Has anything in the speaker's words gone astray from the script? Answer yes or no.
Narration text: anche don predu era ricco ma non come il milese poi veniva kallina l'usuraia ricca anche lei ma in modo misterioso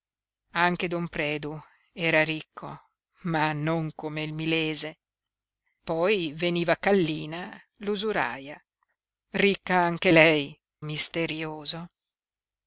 yes